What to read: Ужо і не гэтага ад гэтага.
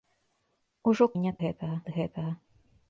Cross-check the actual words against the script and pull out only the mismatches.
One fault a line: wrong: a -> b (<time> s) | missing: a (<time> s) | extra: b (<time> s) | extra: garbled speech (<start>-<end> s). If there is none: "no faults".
no faults